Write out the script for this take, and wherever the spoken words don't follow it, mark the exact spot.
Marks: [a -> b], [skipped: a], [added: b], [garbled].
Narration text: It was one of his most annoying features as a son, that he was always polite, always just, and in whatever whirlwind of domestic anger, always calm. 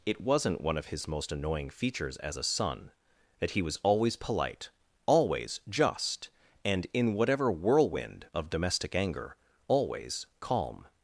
It [was -> wasn't] one of his most annoying features as a son, that he was always polite, always just, and in whatever whirlwind of domestic anger, always calm.